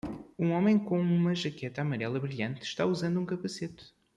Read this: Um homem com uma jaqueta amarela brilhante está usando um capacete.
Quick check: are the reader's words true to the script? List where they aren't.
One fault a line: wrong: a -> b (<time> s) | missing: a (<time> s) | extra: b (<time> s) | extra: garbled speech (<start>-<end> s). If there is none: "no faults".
no faults